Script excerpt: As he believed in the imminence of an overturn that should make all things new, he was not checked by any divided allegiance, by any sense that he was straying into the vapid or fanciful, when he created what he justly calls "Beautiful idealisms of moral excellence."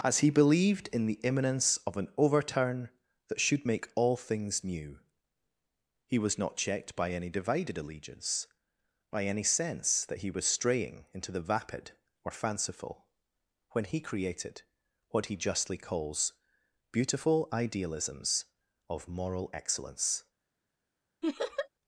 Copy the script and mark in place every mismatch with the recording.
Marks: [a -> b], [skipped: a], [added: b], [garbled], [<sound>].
As he believed in the imminence of an overturn that should make all things new, he was not checked by any divided allegiance, by any sense that he was straying into the vapid or fanciful, when he created what he justly calls "Beautiful idealisms of moral excellence." [laugh]